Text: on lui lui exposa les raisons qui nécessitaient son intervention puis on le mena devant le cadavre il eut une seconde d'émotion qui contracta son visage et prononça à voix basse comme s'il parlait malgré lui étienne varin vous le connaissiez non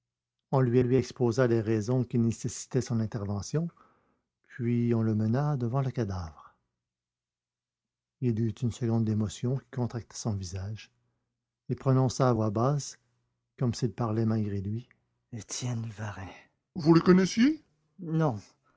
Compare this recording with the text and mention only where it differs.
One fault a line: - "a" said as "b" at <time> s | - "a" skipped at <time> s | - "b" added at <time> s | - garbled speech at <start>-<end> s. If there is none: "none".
none